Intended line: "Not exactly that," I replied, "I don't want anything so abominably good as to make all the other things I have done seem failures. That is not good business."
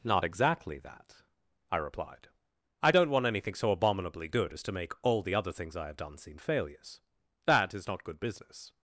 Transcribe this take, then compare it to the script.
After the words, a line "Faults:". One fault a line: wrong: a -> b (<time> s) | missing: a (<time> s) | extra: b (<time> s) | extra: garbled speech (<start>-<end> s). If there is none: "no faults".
"Not exactly that," I replied, "I don't want anything so abominably good as to make all the other things I have done seem failures. That is not good business."
Faults:
no faults